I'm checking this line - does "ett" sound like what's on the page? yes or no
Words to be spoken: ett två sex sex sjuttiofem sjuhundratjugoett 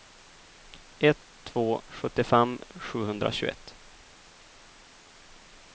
yes